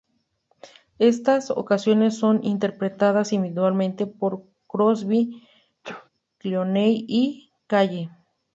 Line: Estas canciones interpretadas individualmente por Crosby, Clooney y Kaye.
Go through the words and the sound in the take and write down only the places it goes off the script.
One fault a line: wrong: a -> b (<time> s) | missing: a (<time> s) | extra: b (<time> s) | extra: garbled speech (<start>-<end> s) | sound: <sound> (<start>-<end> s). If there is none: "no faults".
extra: son (2.2 s)
sound: sneeze (5.8-6.1 s)